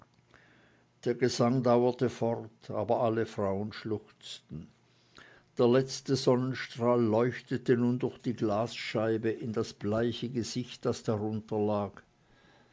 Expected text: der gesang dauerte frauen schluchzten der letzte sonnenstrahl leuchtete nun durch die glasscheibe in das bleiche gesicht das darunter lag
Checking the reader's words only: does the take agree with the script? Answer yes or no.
no